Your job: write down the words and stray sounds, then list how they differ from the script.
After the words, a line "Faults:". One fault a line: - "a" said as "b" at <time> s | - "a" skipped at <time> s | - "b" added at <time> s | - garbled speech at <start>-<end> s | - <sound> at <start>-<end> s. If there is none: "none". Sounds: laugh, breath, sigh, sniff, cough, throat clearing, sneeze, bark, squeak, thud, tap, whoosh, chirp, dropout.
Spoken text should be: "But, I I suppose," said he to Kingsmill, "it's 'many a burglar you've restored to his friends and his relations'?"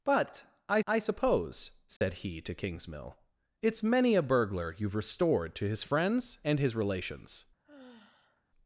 "But, I I suppose," said he to Kingsmill, "it's 'many a burglar you've restored to his friends and his relations'?"
Faults:
- dropout at 2.0-2.0 s
- sigh at 7.6-8.4 s